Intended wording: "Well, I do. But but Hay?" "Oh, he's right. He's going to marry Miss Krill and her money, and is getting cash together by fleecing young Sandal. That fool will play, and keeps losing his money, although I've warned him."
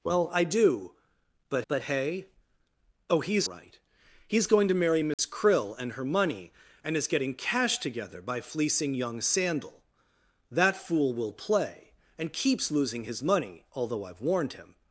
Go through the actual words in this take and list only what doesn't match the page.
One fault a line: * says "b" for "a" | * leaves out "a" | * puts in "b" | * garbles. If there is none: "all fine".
all fine